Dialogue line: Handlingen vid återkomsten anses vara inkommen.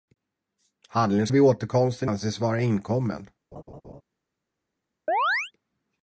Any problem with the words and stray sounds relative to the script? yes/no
yes